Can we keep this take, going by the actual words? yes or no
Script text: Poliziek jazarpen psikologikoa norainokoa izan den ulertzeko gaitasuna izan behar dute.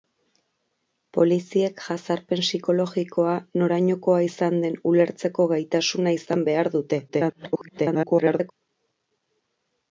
no